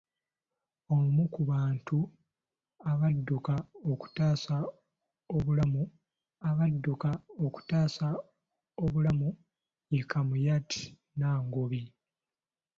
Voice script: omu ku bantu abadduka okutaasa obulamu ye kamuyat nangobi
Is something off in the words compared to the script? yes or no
yes